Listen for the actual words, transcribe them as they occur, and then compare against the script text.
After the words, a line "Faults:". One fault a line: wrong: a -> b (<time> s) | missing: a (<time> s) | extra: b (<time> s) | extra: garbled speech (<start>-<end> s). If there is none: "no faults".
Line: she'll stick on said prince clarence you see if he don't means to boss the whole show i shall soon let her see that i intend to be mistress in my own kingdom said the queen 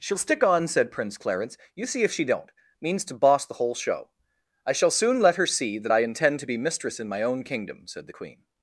she'll stick on said prince clarence you see if she don't means to boss the whole show i shall soon let her see that i intend to be mistress in my own kingdom said the queen
Faults:
wrong: he -> she (2.1 s)